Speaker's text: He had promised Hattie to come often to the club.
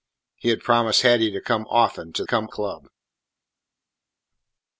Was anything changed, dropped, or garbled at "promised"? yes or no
no